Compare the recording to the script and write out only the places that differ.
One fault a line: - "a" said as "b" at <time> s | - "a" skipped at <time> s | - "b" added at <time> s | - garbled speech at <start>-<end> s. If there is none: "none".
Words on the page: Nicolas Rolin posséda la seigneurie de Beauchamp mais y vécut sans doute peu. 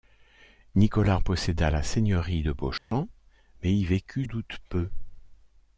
- "Rolin" skipped at 1.2 s
- "sans" skipped at 4.2 s